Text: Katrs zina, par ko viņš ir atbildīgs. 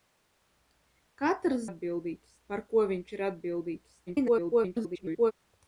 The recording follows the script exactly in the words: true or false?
false